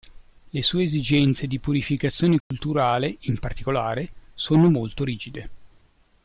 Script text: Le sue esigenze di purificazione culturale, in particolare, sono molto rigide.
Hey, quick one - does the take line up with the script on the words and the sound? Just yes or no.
no